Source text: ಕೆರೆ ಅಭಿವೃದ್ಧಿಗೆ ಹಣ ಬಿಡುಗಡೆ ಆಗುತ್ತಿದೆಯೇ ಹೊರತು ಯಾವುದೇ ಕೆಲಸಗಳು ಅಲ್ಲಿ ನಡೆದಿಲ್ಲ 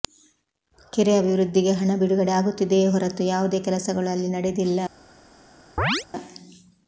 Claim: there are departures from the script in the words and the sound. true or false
true